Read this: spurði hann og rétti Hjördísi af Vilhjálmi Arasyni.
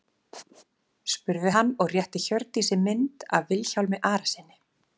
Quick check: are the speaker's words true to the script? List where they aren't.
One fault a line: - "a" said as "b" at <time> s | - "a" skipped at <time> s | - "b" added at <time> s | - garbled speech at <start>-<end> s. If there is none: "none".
- "mynd" added at 2.8 s